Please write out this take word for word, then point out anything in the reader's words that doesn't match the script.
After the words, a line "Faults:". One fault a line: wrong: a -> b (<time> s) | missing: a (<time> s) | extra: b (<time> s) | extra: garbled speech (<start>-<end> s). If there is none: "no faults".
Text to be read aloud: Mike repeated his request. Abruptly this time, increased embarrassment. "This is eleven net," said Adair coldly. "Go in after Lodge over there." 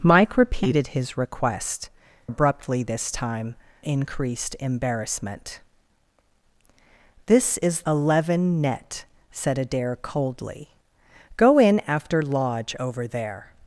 Mike repeated his request. Abruptly this time, increased embarrassment. "This is eleven net," said Adair coldly. "Go in after Lodge over there."
Faults:
no faults